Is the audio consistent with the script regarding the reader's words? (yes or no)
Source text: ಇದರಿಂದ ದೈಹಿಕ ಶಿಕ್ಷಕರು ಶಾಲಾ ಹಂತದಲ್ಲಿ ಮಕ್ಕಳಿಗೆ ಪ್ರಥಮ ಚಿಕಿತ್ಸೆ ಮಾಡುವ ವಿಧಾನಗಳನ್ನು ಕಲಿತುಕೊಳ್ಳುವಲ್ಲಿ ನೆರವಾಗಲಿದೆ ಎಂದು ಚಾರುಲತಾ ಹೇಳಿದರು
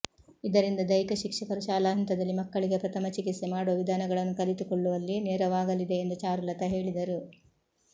yes